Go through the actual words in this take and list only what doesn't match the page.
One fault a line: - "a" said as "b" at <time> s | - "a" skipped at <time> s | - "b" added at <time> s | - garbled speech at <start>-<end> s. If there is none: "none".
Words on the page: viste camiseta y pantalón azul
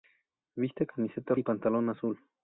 none